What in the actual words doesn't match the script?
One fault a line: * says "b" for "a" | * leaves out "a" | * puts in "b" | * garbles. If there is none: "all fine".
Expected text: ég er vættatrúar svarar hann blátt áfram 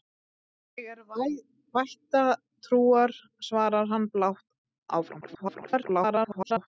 * garbles